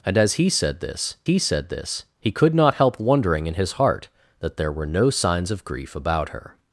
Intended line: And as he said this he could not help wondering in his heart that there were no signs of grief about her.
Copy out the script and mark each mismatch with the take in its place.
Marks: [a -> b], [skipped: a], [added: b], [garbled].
And as he said this he [added: said this he] could not help wondering in his heart that there were no signs of grief about her.